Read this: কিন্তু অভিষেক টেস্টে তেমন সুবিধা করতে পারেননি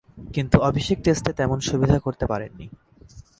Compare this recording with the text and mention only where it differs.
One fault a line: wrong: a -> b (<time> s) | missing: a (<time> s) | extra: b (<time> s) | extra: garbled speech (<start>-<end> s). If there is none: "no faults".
no faults